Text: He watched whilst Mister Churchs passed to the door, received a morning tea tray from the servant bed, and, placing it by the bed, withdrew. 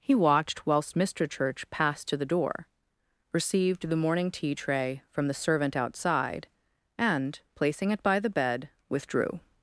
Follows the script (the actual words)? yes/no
no